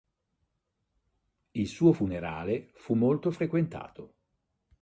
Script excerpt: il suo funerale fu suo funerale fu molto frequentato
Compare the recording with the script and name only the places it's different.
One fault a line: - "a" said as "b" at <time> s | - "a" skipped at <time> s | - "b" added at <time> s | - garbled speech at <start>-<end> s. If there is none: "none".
- "suo funerale fu" skipped at 2.9 s